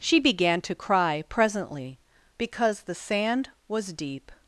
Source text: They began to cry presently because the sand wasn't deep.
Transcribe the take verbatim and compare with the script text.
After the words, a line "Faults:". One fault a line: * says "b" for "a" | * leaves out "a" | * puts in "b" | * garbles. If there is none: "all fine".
She began to cry presently because the sand was deep.
Faults:
* says "She" for "They"
* says "was" for "wasn't"